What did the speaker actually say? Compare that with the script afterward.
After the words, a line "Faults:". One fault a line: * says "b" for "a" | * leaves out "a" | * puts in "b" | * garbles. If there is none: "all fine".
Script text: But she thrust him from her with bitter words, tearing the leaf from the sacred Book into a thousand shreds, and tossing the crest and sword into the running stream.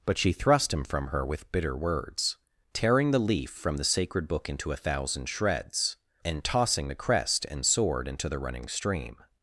But she thrust him from her with bitter words, tearing the leaf from the sacred Book into a thousand shreds, and tossing the crest and sword into the running stream.
Faults:
all fine